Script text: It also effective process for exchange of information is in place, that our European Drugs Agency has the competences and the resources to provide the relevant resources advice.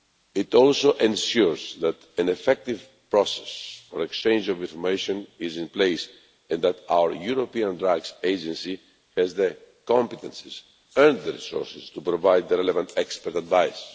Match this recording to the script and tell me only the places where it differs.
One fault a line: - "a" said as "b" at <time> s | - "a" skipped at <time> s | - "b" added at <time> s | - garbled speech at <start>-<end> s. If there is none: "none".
- "ensures that an" added at 0.9 s
- "and" added at 6.5 s
- "resources" said as "expert" at 13.0 s